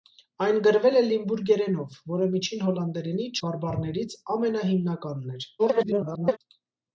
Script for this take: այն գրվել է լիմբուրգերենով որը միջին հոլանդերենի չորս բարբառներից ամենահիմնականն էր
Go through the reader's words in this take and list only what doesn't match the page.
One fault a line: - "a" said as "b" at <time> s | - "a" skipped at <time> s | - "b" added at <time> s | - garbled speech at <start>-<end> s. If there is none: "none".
- "չորս" skipped at 3.3 s
- garbled speech at 5.6-6.4 s